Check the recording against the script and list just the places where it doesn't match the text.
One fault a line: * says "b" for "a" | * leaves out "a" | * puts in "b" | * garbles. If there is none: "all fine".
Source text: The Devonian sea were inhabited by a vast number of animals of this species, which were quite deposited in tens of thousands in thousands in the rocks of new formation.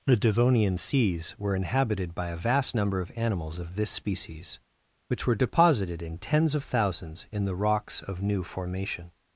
* says "seas" for "sea"
* leaves out "quite"
* leaves out "thousands in"